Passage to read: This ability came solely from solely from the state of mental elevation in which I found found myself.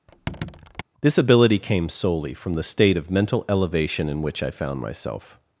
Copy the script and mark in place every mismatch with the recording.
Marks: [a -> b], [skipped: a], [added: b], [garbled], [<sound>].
[squeak] This ability came solely from [skipped: solely from] the state of mental elevation in which I found [skipped: found] myself.